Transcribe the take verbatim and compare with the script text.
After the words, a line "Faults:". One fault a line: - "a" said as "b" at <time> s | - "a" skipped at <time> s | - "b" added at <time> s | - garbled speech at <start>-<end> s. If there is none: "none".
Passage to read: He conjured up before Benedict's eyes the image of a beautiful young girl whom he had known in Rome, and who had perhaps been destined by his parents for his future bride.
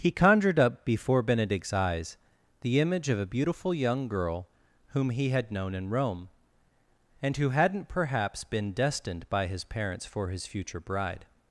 He conjured up before Benedict's eyes the image of a beautiful young girl whom he had known in Rome, and who hadn't perhaps been destined by his parents for his future bride.
Faults:
- "had" said as "hadn't" at 7.5 s